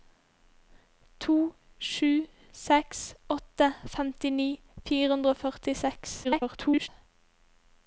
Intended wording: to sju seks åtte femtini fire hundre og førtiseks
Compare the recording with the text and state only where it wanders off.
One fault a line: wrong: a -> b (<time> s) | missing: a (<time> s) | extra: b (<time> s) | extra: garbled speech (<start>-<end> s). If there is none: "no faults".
extra: garbled speech (6.2-6.9 s)